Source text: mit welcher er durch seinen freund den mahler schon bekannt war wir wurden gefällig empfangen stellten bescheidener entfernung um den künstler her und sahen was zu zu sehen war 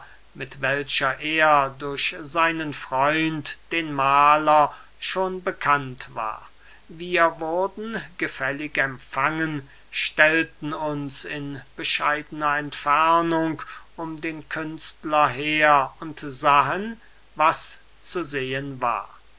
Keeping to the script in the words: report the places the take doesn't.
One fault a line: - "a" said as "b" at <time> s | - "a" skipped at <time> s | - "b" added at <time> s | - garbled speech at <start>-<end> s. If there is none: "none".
- "uns in" added at 10.7 s
- "zu" skipped at 18.2 s